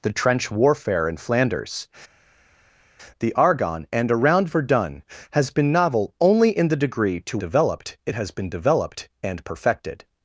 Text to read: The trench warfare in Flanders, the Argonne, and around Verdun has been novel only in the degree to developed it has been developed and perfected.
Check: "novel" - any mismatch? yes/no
no